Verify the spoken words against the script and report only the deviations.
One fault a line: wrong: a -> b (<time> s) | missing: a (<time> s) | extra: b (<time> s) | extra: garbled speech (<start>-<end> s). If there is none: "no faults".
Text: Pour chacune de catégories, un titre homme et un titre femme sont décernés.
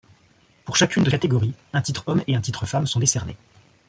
no faults